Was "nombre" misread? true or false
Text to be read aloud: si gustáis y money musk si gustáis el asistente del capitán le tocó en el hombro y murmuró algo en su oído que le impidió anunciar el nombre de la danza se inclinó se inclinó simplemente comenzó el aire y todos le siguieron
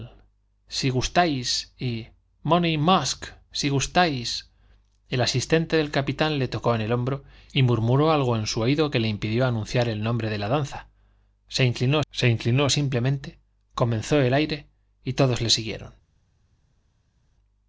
false